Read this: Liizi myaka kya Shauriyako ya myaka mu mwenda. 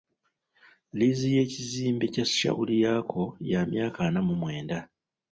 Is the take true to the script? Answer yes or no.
no